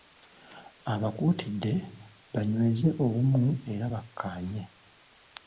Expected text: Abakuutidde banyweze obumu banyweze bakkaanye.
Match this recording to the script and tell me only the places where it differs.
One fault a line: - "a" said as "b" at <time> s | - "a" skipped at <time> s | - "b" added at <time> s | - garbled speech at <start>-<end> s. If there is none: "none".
- "banyweze" said as "era" at 3.7 s